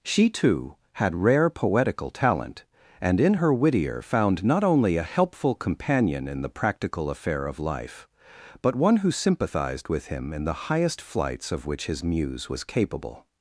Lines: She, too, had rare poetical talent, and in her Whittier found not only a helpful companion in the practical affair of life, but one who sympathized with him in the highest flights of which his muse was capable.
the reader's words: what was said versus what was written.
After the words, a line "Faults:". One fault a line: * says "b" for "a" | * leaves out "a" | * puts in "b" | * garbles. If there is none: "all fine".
She, too, had rare poetical talent, and in her Whittier found not only a helpful companion in the practical affair of life, but one who sympathized with him in the highest flights of which his muse was capable.
Faults:
all fine